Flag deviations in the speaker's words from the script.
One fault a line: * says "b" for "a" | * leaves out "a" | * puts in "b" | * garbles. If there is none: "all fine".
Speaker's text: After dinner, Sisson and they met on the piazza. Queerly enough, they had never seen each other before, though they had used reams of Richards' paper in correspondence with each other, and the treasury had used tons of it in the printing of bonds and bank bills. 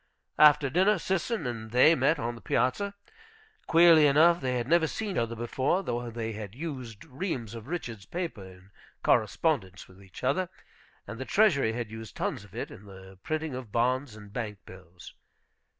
* leaves out "each"